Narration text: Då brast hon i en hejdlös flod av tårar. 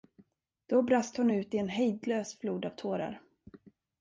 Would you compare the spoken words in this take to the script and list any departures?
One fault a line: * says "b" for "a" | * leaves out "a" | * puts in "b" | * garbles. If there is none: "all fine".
* puts in "ut"